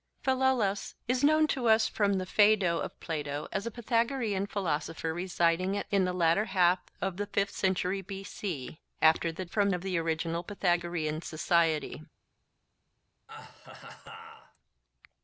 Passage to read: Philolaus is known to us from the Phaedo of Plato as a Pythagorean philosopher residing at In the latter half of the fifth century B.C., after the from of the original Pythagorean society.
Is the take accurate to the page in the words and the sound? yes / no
no